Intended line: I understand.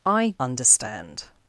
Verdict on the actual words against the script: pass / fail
pass